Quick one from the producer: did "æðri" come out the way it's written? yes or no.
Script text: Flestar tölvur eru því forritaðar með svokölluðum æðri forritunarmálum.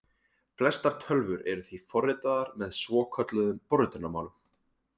no